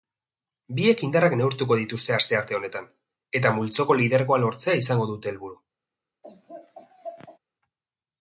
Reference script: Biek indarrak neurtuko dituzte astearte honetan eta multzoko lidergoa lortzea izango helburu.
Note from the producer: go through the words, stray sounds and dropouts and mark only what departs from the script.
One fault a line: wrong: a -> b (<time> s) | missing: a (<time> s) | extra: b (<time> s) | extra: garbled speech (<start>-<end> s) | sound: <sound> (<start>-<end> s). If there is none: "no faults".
extra: dute (5.1 s)
sound: laugh (6.2-7.4 s)